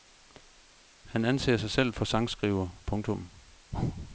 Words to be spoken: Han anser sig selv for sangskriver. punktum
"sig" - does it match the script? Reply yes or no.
yes